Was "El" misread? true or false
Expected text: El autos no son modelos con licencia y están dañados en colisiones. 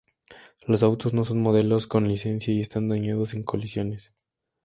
true